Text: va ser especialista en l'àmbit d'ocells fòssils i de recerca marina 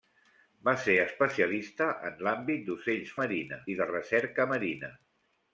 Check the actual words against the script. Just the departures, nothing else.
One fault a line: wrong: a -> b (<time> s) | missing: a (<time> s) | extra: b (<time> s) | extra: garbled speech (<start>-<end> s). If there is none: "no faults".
wrong: fòssils -> marina (3.2 s)